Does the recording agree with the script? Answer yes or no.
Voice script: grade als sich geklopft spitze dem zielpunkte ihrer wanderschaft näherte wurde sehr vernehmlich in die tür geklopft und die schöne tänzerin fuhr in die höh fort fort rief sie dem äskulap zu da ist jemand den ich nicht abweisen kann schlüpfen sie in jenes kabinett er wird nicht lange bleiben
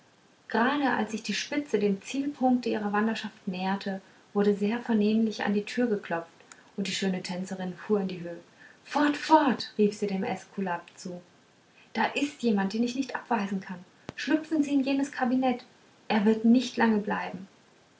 no